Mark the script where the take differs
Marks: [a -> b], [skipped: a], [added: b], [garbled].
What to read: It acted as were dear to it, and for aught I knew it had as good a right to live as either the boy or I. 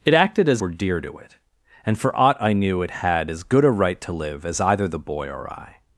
It acted as were dear to it, and for aught I knew it had as good a right to live as either the boy or I.